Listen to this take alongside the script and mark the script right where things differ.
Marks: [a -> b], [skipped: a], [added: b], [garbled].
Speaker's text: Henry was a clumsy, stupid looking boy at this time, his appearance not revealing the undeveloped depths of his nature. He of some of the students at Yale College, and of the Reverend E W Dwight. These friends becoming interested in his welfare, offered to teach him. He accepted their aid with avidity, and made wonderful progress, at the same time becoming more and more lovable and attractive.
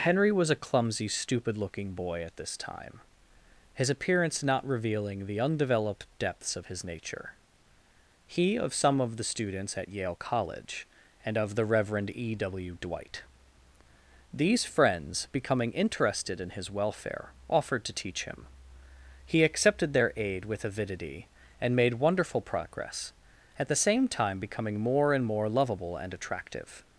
Henry was a clumsy, stupid looking boy at this time, his appearance not revealing the undeveloped depths of his nature. He of some of the students at Yale College, and of the Reverend E W Dwight. These friends becoming interested in his welfare, offered to teach him. He accepted their aid with avidity, and made wonderful progress, at the same time becoming more and more lovable and attractive.